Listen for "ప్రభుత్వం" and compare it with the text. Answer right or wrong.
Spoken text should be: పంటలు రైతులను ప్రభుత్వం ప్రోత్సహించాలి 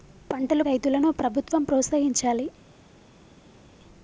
right